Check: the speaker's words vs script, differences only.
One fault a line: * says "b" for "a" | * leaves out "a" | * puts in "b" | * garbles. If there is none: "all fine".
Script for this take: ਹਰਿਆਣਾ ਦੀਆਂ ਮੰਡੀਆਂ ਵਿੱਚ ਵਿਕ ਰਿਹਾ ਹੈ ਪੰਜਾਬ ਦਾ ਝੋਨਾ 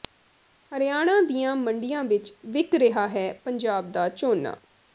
all fine